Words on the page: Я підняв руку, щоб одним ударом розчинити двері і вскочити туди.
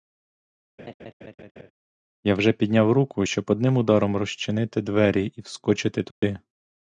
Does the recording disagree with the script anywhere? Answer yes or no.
yes